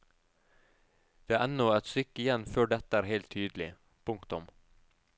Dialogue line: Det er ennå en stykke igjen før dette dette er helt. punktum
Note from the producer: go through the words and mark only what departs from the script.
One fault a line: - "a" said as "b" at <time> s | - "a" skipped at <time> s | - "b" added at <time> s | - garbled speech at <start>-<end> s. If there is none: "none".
- "en" said as "et" at 1.8 s
- "dette" skipped at 3.0 s
- "tydelig" added at 3.4 s